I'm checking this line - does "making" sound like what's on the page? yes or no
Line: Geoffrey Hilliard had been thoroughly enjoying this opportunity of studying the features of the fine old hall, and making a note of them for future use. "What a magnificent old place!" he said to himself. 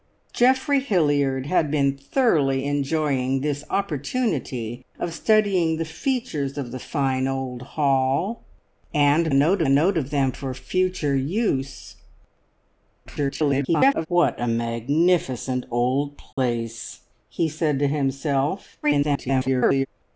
no